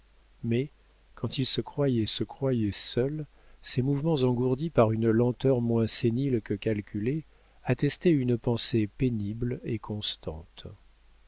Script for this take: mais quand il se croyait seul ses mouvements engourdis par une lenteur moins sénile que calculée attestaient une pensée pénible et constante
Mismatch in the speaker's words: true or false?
true